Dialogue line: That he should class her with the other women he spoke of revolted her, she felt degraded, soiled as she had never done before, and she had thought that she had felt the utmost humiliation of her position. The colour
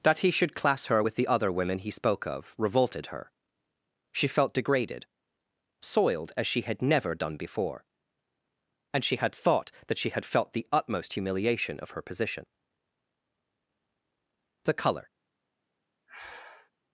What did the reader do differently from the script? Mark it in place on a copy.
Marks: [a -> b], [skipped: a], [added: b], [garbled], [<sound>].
That he should class her with the other women he spoke of revolted her, she felt degraded, soiled as she had never done before, and she had thought that she had felt the utmost humiliation of her position. The colour [breath]